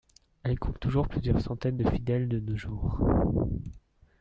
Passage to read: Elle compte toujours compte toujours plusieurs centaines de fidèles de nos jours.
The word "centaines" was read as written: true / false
true